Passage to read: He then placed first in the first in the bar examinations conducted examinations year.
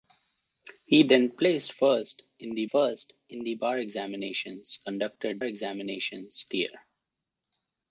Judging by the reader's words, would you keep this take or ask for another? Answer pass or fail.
pass